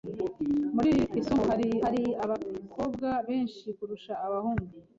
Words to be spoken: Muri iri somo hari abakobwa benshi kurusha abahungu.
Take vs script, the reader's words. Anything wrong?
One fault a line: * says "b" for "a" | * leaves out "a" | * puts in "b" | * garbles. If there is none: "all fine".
* puts in "hari"